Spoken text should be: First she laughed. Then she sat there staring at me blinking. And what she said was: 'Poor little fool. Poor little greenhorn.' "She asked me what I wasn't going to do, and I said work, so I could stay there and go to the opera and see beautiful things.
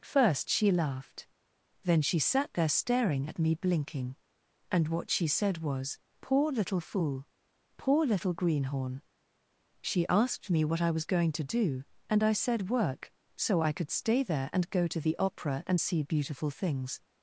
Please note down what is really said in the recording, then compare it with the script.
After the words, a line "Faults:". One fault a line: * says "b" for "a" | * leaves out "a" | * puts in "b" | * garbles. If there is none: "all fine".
First she laughed. Then she sat there staring at me blinking. And what she said was: 'Poor little fool. Poor little greenhorn.' "She asked me what I was going to do, and I said work, so I could stay there and go to the opera and see beautiful things.
Faults:
* says "was" for "wasn't"